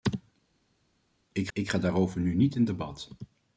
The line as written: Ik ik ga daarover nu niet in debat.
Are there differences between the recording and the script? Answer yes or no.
no